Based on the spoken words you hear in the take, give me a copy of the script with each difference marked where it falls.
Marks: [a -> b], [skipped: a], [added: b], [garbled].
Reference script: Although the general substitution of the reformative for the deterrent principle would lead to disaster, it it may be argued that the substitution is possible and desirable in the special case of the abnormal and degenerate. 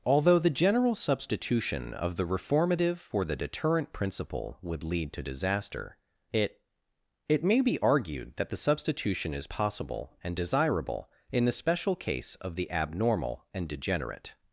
Although the general substitution of the reformative for the deterrent principle would lead to disaster, it it may be argued that the substitution is possible and desirable in the special case of the abnormal and degenerate.